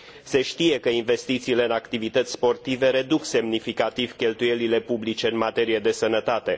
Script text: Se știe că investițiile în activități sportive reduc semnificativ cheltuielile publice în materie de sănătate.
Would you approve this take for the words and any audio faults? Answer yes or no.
yes